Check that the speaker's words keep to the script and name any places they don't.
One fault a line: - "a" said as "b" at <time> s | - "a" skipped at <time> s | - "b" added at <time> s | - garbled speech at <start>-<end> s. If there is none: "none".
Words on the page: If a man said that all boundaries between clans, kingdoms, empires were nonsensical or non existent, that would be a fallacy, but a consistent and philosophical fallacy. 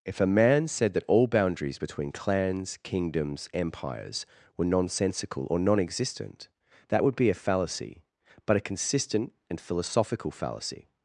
none